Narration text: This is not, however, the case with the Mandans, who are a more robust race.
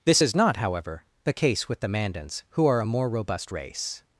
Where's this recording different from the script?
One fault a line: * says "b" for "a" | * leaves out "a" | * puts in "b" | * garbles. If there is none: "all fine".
all fine